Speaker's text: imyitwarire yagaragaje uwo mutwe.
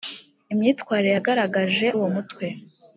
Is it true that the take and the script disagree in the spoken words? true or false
false